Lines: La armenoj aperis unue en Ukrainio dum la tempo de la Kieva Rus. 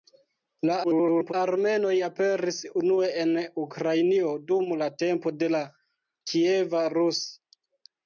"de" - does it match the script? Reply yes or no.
yes